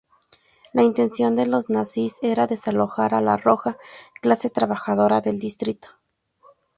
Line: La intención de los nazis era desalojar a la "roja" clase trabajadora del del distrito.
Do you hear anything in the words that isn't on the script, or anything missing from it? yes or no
yes